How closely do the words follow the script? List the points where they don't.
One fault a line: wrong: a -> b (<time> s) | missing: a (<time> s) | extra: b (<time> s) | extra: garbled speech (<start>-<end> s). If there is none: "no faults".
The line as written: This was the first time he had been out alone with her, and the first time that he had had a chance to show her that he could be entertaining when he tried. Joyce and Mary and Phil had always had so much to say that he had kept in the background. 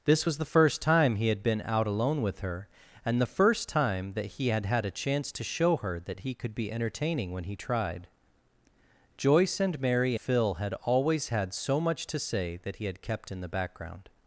missing: and (10.1 s)